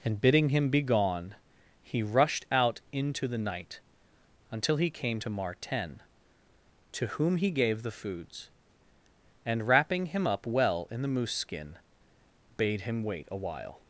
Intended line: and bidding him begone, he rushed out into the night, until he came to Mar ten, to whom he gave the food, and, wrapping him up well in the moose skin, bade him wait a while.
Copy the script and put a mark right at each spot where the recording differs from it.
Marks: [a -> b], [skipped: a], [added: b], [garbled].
and bidding him begone, he rushed out into the night, until he came to Mar ten, to whom he gave the [food, -> foods] and, wrapping him up well in the moose skin, bade him wait a while.